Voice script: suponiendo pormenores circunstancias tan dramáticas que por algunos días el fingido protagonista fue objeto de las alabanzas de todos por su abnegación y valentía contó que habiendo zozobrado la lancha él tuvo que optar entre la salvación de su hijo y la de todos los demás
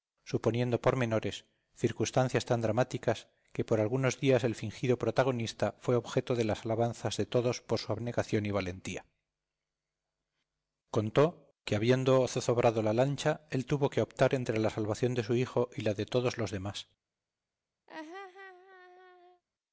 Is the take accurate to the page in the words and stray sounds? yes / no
no